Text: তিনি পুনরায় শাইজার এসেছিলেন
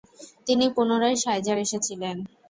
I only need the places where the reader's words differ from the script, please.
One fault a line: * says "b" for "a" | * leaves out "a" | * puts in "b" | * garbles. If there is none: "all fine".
all fine